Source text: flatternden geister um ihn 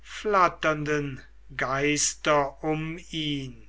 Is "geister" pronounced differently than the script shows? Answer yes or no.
no